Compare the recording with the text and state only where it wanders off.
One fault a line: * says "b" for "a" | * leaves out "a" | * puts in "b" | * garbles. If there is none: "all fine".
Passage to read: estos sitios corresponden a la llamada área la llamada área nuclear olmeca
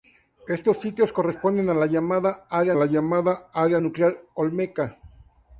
all fine